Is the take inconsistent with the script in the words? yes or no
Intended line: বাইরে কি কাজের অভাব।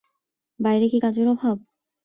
no